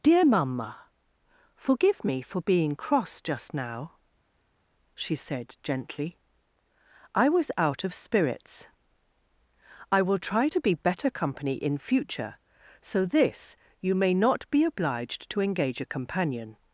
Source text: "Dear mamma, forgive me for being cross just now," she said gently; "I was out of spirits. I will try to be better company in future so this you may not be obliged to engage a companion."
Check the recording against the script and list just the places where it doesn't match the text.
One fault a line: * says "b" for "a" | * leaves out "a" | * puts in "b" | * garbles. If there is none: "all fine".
all fine